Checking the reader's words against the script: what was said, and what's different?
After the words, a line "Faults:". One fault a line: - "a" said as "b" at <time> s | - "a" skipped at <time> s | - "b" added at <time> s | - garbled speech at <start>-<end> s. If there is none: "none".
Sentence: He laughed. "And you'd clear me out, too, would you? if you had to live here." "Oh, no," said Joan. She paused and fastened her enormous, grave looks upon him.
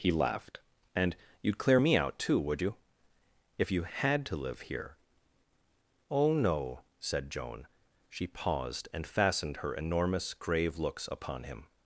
He laughed. "And you'd clear me out, too, would you? if you had to live here." "Oh, no," said Joan. She paused and fastened her enormous, grave looks upon him.
Faults:
none